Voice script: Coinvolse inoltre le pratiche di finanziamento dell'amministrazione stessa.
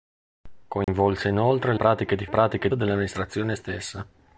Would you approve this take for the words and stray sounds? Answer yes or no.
no